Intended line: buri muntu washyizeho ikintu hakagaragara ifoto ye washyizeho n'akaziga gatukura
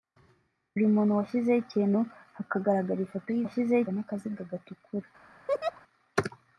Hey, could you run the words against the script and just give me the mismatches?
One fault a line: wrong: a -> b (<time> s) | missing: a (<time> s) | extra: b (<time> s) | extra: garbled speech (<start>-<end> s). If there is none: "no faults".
no faults